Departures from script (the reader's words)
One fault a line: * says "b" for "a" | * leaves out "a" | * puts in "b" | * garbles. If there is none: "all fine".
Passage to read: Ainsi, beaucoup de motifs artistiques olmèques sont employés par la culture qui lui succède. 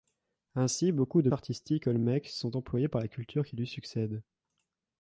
* leaves out "motifs"